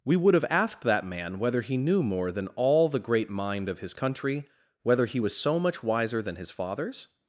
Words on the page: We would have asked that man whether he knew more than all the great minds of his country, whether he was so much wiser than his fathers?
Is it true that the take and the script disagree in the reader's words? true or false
true